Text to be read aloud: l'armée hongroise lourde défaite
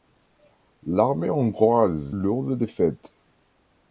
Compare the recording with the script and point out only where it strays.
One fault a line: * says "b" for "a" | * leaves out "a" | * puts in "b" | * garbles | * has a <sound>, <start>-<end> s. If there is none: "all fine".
all fine